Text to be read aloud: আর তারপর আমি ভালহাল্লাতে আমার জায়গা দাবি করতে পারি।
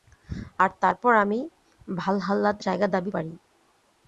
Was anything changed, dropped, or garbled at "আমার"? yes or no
yes